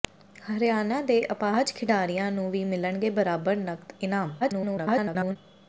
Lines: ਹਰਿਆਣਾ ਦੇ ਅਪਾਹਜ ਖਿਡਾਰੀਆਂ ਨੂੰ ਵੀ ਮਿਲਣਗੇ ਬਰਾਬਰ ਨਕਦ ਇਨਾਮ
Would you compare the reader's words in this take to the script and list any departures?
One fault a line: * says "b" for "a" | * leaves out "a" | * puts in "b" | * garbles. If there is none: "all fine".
* garbles